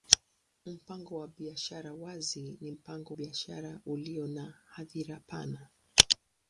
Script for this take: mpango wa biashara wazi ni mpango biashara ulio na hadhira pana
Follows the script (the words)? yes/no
yes